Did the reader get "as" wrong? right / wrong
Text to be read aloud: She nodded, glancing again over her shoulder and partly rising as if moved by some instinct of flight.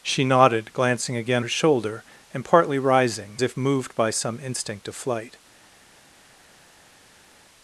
wrong